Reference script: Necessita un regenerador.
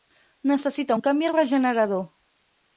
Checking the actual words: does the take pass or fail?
fail